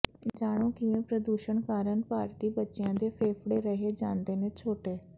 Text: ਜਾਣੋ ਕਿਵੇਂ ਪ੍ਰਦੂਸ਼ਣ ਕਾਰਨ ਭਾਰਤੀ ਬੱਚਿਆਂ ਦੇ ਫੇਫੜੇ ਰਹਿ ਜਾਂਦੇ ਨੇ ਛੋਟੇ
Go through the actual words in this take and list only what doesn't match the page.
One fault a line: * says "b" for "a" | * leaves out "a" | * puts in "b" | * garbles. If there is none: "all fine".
all fine